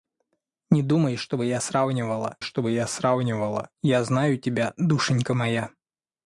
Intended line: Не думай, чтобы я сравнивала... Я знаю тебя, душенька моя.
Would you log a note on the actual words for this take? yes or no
yes